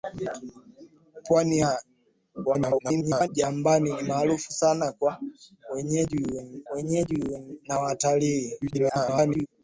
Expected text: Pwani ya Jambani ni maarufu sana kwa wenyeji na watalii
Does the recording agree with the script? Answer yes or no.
no